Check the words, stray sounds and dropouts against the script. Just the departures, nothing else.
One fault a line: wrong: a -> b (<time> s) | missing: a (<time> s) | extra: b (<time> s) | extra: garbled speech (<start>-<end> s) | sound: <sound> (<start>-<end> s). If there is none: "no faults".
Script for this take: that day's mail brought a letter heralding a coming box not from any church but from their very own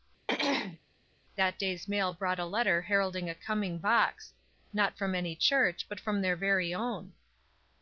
sound: throat clearing (0.3-0.8 s)